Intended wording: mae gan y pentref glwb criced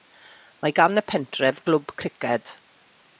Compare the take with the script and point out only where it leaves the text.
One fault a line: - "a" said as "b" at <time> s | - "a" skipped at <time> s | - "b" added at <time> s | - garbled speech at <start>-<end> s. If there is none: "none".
none